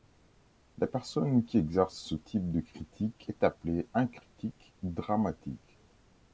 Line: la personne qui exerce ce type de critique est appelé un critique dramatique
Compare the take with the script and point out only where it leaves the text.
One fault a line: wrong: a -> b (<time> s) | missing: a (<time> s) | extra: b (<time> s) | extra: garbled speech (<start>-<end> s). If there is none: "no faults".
no faults